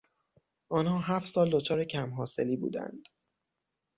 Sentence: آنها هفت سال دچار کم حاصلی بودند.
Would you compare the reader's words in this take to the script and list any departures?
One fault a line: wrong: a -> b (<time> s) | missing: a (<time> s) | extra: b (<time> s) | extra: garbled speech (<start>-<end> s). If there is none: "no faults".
no faults